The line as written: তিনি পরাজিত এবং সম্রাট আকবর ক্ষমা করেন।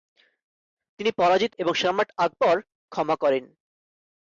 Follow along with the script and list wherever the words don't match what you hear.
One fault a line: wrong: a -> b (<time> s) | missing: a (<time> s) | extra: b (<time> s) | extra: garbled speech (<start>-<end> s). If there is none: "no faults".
no faults